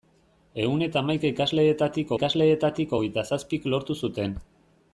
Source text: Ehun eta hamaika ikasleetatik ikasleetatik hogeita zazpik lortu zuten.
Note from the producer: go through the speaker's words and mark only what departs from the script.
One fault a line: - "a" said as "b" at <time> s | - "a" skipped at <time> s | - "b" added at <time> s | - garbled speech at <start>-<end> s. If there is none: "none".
none